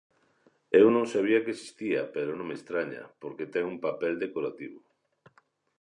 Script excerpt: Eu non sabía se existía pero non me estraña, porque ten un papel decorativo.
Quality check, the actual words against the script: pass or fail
fail